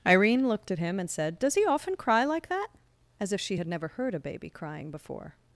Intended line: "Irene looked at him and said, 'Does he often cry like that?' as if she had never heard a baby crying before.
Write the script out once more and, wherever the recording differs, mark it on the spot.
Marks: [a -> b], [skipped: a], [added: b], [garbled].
"Irene looked at him and said, 'Does he often cry like that?' as if she had never heard a baby crying before.